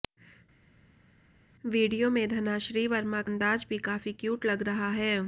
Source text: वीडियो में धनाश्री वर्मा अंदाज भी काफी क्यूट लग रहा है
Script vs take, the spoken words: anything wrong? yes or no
no